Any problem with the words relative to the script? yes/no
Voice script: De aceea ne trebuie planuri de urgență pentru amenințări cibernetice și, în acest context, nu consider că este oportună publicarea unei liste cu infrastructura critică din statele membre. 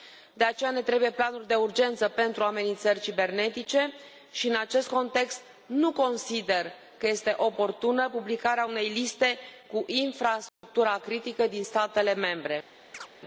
no